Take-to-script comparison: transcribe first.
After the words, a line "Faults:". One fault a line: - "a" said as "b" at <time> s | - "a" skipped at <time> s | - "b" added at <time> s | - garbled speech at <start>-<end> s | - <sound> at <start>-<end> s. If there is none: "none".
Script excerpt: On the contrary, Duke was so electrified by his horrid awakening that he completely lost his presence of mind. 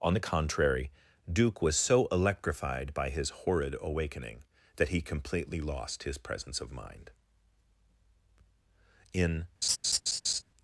On the contrary, Duke was so electrified by his horrid awakening that he completely lost his presence of mind. In
Faults:
- "In" added at 9.1 s
- laugh at 9.6-10.4 s